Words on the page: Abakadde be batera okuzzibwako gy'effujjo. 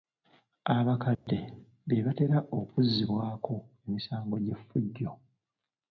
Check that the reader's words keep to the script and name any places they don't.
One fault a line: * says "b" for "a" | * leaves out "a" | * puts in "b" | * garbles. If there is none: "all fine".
* puts in "emisango"